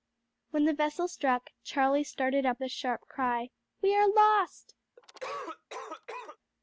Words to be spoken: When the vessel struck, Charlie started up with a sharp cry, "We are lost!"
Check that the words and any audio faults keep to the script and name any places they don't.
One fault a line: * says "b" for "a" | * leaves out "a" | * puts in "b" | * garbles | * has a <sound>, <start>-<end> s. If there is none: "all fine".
* leaves out "with"
* has a cough, 5.0-6.4 s